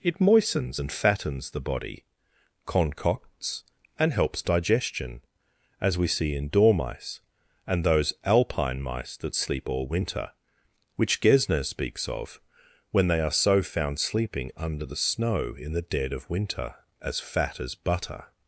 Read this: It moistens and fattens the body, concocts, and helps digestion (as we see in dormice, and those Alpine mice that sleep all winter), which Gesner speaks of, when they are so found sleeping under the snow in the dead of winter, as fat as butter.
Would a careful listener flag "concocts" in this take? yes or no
no